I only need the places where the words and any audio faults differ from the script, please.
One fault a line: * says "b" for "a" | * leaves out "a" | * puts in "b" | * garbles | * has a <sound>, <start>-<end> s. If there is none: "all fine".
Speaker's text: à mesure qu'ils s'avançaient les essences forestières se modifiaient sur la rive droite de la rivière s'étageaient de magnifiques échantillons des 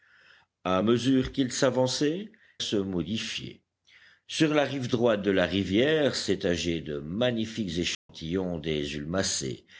* leaves out "les essences forestières"
* has a dropout, 7.9-8.1 s